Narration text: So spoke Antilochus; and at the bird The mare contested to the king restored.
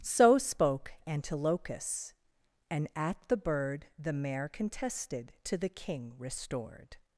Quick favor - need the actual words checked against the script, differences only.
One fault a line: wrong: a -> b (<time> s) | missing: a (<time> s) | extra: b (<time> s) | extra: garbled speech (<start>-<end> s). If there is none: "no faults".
no faults